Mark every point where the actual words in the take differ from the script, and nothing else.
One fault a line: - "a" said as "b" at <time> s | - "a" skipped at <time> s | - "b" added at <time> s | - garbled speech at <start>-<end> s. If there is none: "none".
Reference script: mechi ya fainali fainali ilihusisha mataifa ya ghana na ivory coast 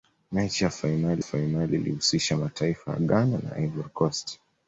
none